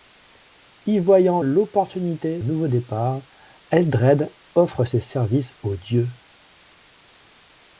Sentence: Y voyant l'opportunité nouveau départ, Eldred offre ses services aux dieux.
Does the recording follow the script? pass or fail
pass